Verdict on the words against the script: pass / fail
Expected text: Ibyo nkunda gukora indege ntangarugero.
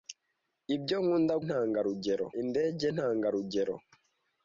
fail